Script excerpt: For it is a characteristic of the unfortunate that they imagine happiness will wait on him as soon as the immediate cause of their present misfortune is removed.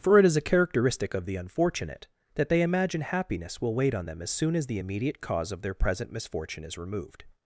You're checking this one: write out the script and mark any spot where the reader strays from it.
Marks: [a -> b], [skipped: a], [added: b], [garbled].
For it is a characteristic of the unfortunate that they imagine happiness will wait on [him -> them] as soon as the immediate cause of their present misfortune is removed.